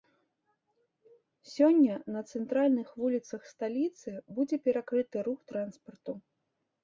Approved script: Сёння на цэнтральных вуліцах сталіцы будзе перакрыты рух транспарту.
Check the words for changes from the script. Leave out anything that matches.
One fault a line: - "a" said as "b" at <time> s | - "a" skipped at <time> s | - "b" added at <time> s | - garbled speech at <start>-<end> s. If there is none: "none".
none